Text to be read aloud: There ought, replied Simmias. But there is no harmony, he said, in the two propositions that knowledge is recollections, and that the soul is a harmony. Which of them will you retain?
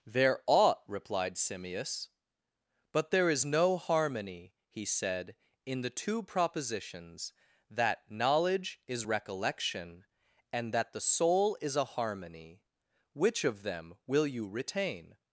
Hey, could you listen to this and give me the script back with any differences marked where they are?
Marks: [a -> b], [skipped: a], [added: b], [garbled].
There ought, replied Simmias. But there is no harmony, he said, in the two propositions that knowledge is [recollections, -> recollection] and that the soul is a harmony. Which of them will you retain?